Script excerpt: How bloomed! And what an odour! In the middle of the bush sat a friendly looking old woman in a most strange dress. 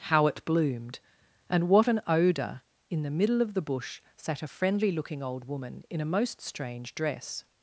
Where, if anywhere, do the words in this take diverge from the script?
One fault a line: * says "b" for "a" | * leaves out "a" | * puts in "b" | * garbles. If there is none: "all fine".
* puts in "it"